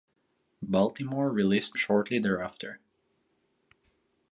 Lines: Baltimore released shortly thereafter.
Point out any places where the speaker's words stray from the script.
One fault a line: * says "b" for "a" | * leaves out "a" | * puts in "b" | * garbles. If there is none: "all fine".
all fine